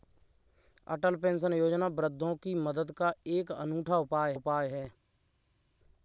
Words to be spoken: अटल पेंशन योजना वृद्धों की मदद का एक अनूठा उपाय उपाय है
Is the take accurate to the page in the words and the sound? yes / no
yes